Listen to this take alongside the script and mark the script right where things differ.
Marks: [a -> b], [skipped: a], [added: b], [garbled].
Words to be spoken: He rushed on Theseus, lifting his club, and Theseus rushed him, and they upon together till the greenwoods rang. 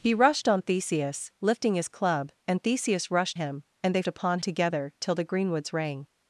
He rushed on Theseus, lifting his club, and Theseus rushed him, and they upon together till the greenwoods rang.